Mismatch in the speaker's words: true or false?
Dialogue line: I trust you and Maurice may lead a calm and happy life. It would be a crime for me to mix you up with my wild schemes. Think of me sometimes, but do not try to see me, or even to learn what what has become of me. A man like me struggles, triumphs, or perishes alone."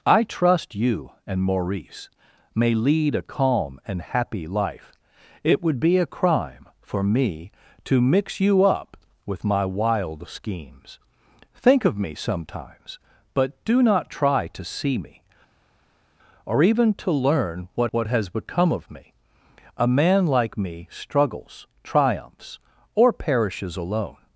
false